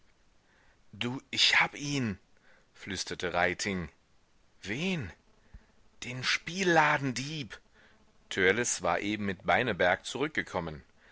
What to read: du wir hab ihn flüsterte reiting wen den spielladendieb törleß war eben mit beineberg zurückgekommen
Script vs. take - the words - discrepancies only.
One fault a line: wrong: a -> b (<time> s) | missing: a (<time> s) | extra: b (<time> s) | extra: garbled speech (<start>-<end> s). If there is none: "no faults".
wrong: wir -> ich (1.3 s)